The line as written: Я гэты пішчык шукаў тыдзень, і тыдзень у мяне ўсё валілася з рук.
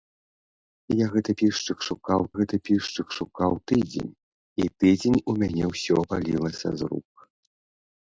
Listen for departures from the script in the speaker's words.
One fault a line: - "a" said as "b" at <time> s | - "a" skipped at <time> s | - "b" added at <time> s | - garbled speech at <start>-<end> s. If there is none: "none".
- "гэты пішчык шукаў" added at 2.4 s